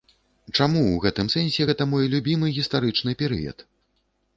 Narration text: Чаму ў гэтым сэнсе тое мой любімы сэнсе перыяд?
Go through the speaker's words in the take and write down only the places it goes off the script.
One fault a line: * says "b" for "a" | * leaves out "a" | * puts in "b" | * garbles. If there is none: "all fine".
* says "гэта" for "тое"
* says "гістарычны" for "сэнсе"